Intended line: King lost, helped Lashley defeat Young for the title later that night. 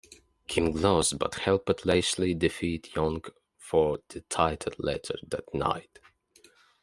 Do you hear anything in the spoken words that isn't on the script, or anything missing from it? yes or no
yes